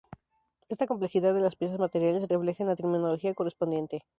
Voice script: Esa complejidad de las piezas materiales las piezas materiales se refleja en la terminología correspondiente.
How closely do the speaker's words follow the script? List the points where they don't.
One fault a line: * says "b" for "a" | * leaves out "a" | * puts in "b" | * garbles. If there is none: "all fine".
* says "Esta" for "Esa"
* leaves out "las piezas materiales"